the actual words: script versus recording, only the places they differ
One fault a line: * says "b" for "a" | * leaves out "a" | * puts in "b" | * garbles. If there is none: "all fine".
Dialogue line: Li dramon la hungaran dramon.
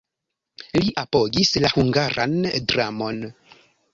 * says "apogis" for "dramon"